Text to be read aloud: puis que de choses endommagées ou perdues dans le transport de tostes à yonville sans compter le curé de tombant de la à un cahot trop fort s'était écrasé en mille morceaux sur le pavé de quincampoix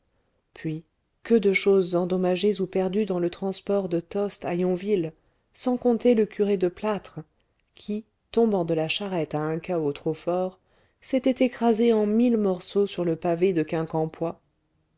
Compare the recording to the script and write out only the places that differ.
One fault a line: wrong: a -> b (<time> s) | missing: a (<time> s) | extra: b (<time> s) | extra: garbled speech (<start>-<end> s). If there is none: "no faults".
extra: plâtre qui (6.7 s)
extra: charrette (8.9 s)